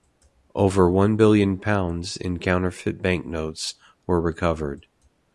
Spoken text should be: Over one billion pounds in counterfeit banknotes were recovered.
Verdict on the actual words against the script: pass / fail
pass